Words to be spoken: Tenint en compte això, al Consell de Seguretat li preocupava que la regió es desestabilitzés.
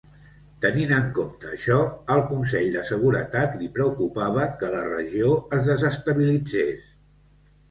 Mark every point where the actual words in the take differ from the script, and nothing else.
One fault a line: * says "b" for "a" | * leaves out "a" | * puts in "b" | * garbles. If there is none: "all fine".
all fine